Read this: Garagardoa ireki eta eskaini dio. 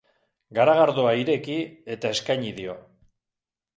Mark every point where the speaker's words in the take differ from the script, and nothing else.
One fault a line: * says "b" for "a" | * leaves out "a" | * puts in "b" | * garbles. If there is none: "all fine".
all fine